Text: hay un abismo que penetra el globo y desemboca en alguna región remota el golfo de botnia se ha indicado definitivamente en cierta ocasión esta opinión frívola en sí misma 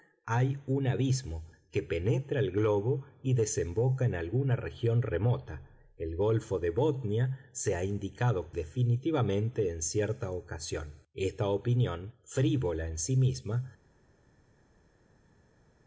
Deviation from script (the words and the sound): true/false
false